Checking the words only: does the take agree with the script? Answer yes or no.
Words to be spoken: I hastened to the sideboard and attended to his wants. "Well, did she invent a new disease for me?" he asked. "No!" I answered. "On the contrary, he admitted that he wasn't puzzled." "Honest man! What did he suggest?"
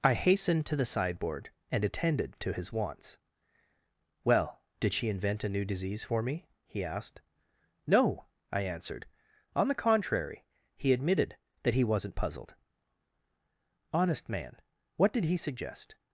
yes